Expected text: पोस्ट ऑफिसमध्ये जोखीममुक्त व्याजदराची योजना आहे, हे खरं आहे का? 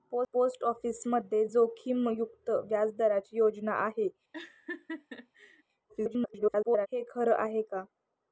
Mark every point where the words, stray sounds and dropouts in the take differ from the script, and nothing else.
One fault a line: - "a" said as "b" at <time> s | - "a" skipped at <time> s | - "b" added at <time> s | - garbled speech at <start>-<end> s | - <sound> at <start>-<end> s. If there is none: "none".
- laugh at 4.3-5.6 s
- garbled speech at 5.9-6.9 s